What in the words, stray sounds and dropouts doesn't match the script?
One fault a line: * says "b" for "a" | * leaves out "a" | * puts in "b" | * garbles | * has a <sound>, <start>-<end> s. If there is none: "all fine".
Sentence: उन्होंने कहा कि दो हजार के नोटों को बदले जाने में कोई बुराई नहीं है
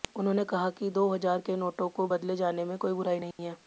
* has a dropout, 3.3-3.4 s